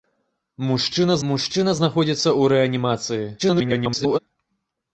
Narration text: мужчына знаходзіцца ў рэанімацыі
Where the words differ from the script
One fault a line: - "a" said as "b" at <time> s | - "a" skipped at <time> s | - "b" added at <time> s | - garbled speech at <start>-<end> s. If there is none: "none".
- "мужчына" added at 1.3 s
- garbled speech at 3.4-4.2 s